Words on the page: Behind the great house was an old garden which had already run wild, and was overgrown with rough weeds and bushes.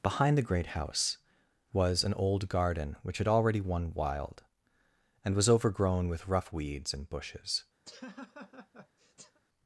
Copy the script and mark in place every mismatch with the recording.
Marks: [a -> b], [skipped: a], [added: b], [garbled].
Behind the great house was an old garden which had already [run -> won] wild, and was overgrown with rough weeds and bushes.